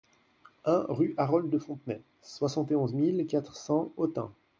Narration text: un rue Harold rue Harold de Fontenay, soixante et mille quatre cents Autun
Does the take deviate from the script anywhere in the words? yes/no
yes